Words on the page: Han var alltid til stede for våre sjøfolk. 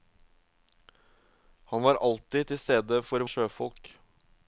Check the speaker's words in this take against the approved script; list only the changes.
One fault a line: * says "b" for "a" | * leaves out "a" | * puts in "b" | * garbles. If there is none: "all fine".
* leaves out "våre"